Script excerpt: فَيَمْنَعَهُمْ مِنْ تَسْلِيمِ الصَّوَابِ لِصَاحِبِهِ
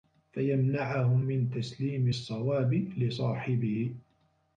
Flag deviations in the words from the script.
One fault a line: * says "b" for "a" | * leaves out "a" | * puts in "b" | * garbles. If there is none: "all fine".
all fine